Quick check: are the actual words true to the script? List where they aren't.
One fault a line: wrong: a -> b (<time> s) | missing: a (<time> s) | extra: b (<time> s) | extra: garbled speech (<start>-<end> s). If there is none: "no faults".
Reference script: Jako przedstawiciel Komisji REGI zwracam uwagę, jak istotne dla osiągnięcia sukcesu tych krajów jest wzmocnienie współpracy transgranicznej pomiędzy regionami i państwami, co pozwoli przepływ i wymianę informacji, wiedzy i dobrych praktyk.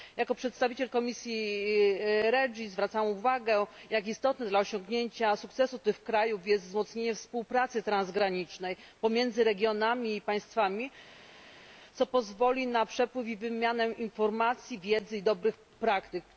extra: na (12.7 s)